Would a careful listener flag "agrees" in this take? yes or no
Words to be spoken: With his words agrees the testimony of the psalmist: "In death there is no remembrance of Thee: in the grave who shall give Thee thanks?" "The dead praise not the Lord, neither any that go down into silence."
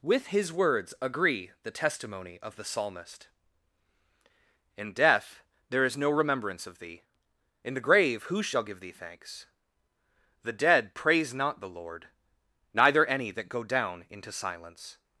yes